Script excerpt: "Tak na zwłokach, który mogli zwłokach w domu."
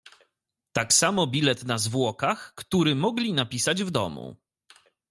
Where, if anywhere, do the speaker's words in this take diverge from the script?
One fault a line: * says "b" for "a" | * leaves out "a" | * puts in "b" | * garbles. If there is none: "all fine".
* puts in "samo bilet"
* says "napisać" for "zwłokach"